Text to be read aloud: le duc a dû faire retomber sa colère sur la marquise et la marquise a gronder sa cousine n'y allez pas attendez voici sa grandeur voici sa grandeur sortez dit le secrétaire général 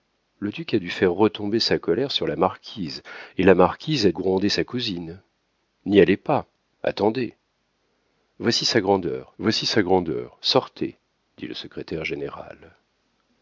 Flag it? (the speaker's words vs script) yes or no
no